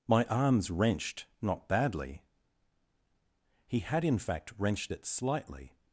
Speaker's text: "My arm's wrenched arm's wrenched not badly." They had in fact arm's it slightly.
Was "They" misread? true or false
true